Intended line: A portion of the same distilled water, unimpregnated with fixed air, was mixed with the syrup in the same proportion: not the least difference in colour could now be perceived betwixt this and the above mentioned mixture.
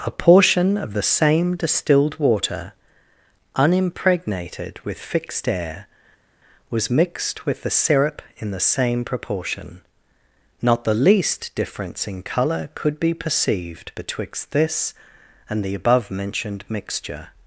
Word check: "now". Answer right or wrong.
wrong